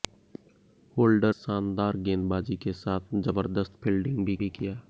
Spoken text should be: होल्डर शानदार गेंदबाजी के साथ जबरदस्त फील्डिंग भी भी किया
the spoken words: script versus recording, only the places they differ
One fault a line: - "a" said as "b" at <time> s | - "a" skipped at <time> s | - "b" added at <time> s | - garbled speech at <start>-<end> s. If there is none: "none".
none